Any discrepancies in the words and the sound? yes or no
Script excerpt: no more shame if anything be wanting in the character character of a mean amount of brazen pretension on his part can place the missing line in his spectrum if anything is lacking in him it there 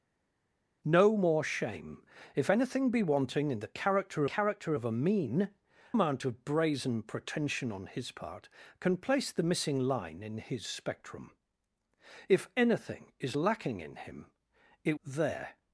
no